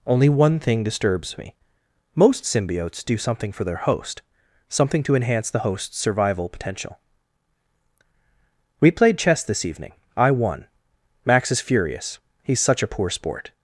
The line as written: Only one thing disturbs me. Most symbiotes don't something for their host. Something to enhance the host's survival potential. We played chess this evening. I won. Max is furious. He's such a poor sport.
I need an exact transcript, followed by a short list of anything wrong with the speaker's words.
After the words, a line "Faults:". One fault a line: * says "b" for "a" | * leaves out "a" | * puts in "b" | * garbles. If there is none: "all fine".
Only one thing disturbs me. Most symbiotes do something for their host. Something to enhance the host's survival potential. We played chess this evening. I won. Max is furious. He's such a poor sport.
Faults:
* says "do" for "don't"